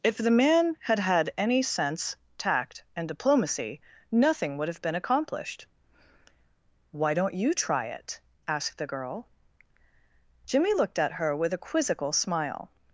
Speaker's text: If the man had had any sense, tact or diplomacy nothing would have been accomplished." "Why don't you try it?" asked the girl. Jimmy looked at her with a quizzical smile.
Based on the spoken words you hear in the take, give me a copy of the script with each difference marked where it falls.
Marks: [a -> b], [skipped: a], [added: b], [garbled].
If the man had had any sense, tact [or -> and] diplomacy nothing would have been accomplished." "Why don't you try it?" asked the girl. Jimmy looked at her with a quizzical smile.